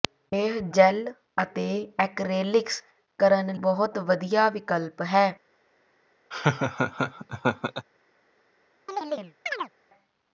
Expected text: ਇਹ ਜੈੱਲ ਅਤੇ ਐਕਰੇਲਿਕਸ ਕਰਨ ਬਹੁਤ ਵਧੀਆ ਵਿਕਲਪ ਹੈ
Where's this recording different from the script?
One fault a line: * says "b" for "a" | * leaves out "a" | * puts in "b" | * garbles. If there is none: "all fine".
all fine